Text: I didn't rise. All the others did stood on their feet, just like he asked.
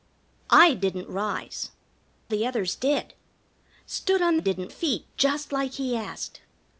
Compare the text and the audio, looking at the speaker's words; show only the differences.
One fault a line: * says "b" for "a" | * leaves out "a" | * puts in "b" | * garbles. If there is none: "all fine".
* leaves out "All"
* says "didn't" for "their"